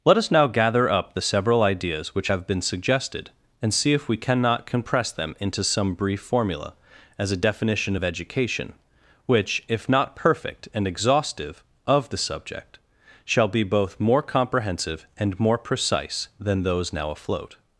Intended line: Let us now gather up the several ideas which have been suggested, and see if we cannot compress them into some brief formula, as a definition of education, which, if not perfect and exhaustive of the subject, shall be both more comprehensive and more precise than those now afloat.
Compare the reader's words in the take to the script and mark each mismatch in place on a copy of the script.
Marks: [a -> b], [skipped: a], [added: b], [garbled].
Let us now gather up the several ideas which have been suggested, and see if we cannot compress them into some brief formula, as a definition of education, which, if not perfect and exhaustive of the subject, shall be both more comprehensive and more precise than those now afloat.